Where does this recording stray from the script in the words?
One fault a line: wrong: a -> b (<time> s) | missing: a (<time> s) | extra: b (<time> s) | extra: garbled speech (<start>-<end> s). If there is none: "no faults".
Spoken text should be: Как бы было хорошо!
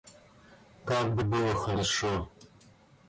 no faults